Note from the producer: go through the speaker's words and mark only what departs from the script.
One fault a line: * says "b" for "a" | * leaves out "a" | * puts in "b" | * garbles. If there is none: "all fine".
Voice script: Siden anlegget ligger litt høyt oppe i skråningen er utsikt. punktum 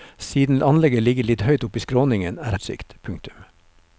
all fine